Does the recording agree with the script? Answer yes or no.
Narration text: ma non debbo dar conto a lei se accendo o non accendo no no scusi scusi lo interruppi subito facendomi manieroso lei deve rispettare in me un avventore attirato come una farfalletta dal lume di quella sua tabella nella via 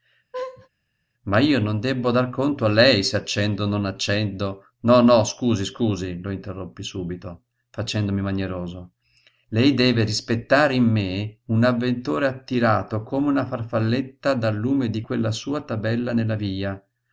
no